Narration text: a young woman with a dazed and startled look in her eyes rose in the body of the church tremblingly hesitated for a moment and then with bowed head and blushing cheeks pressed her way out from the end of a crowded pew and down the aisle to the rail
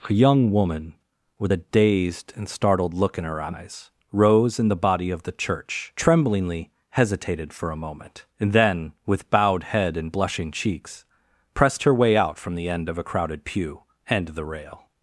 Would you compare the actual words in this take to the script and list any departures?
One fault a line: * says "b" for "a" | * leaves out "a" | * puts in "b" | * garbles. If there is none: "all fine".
* leaves out "down the aisle to"